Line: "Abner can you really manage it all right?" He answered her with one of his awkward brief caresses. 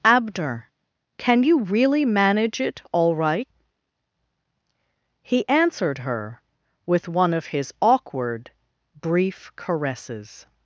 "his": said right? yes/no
yes